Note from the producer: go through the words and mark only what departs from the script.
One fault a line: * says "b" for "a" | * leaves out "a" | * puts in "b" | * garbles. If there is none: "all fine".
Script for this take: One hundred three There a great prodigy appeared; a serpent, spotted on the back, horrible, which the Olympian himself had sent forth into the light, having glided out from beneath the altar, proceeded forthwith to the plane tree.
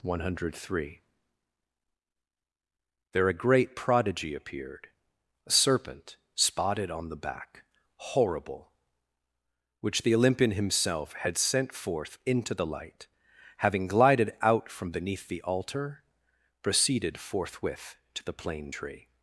all fine